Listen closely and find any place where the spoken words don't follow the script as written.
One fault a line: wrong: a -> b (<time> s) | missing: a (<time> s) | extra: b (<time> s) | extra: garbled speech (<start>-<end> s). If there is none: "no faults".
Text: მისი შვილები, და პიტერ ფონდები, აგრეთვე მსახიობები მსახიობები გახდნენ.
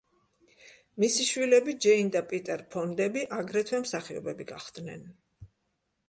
extra: ჯეინ (1.9 s)
missing: მსახიობები (4.5 s)